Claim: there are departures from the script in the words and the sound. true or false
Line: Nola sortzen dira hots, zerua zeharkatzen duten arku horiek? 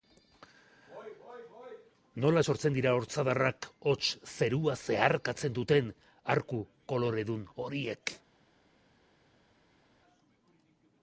true